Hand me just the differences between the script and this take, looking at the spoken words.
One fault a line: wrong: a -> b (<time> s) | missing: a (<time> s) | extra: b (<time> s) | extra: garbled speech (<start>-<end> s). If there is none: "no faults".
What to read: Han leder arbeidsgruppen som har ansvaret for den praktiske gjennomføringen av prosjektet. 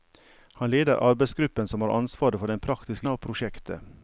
missing: gjennomføringen (3.1 s)